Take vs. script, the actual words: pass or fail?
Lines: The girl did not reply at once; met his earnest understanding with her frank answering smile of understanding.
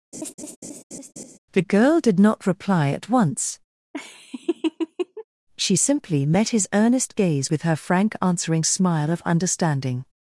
fail